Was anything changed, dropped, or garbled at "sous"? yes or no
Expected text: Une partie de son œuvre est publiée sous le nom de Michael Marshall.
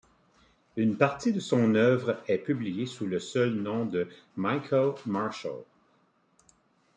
no